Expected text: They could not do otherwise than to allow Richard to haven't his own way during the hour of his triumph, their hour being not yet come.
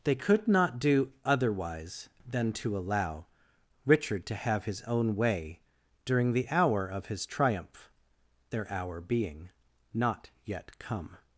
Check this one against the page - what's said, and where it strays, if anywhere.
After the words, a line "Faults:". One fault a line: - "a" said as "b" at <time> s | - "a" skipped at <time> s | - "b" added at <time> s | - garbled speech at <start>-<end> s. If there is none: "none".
They could not do otherwise than to allow Richard to have his own way during the hour of his triumph, their hour being not yet come.
Faults:
- "haven't" said as "have" at 4.3 s